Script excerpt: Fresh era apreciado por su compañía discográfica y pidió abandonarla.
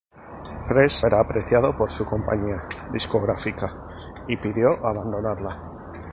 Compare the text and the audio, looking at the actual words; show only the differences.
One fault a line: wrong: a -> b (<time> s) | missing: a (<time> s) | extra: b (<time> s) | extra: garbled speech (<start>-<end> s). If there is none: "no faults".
no faults